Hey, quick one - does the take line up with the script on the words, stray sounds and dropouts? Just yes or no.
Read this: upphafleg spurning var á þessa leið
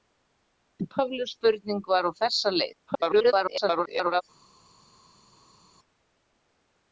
no